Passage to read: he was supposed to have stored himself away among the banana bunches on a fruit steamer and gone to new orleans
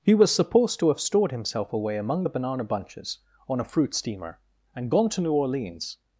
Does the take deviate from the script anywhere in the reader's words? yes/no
no